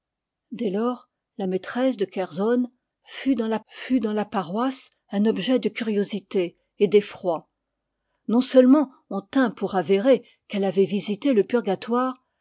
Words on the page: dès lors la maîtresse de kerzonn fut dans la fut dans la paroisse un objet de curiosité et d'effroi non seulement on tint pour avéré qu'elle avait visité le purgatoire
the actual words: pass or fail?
pass